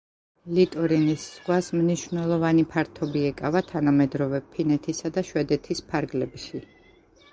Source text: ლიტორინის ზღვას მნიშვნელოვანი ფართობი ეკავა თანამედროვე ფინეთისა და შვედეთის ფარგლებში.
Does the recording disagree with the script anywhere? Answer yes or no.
no